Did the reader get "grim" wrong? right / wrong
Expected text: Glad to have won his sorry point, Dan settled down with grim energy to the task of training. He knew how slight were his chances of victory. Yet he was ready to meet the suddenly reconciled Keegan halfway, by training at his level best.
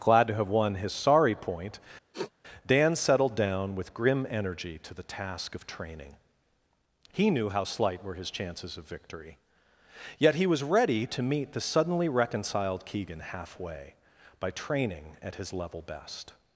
right